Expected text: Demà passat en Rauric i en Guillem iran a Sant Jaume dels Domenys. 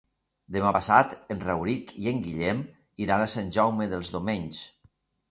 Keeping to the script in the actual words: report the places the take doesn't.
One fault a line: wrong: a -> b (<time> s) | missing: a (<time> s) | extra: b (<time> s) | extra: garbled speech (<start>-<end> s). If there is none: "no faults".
no faults